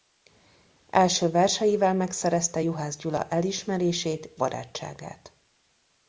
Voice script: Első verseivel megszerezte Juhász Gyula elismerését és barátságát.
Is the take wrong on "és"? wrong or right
wrong